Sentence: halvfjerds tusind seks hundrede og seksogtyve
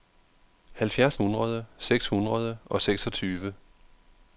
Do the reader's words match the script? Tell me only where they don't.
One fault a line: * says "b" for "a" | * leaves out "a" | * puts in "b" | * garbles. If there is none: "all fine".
* says "hundrede" for "tusind"